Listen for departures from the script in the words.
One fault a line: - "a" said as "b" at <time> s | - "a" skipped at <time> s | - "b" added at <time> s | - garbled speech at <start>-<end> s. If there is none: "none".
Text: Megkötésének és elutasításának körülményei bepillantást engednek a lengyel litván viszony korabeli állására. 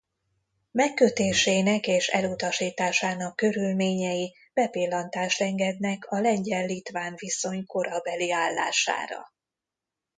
none